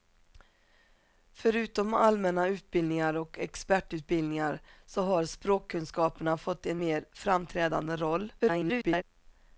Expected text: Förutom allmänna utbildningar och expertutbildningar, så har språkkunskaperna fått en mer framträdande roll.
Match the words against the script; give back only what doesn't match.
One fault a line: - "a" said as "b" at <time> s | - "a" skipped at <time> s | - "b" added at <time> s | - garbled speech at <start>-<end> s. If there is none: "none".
- garbled speech at 8.4-9.0 s